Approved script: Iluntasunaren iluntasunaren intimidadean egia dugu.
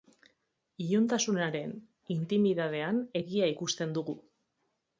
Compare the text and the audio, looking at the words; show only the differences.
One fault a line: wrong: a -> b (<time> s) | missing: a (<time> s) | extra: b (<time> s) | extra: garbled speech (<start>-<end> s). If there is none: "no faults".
missing: iluntasunaren (1.8 s)
extra: ikusten (3.5 s)